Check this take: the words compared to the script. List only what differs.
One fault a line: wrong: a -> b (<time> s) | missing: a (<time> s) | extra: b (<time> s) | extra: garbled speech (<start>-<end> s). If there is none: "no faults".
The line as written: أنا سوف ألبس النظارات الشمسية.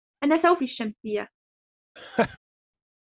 missing: ألبس النظارات (0.6 s)